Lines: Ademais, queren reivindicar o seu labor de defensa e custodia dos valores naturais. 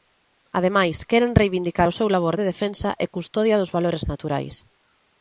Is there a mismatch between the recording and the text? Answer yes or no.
no